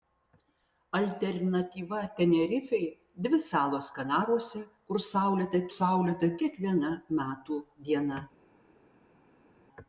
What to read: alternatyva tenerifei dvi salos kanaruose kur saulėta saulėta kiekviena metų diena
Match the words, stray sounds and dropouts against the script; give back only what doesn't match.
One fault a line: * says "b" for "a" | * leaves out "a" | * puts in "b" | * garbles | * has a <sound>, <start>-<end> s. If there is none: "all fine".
all fine